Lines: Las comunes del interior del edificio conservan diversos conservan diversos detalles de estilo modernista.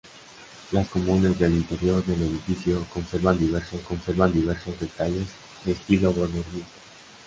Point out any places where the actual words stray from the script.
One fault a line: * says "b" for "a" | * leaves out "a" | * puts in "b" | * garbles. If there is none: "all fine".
all fine